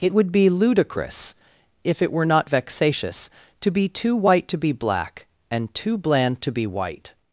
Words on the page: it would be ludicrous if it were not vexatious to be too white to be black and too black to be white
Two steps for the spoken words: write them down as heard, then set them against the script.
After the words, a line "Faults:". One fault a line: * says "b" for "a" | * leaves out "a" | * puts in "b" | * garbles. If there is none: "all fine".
it would be ludicrous if it were not vexatious to be too white to be black and too bland to be white
Faults:
* says "bland" for "black"